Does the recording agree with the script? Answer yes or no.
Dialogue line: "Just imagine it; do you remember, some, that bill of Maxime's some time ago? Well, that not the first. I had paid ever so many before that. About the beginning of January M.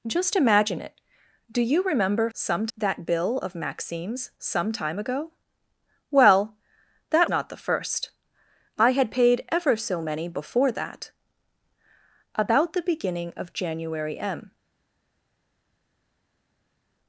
yes